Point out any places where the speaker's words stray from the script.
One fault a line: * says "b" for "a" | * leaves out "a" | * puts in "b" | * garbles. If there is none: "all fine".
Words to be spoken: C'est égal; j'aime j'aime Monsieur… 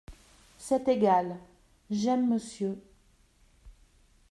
* leaves out "j'aime"